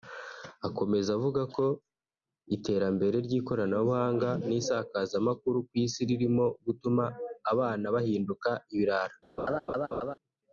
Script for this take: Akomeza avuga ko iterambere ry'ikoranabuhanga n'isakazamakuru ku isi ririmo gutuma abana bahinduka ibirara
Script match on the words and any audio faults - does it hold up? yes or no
no